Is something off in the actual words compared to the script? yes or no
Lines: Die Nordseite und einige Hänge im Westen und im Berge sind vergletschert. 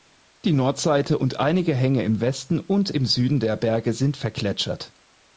yes